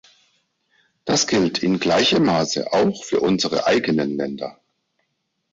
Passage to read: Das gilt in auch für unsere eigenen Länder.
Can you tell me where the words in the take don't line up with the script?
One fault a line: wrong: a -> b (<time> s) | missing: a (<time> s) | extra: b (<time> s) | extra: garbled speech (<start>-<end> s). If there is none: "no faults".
extra: gleichem Maße (1.8 s)